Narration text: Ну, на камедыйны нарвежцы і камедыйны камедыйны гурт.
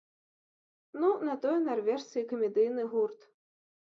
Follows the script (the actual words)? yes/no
no